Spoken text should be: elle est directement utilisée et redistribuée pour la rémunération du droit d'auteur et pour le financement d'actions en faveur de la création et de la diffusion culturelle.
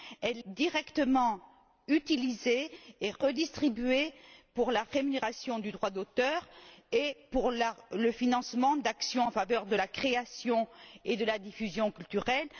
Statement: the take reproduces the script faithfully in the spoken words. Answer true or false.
false